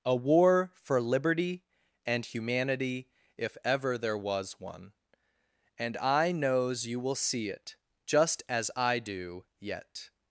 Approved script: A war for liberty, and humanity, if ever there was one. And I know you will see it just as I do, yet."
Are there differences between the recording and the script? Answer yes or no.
yes